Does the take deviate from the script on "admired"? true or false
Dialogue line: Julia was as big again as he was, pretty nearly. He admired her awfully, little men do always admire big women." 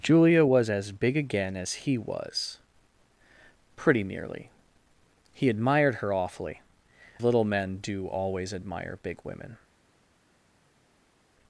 false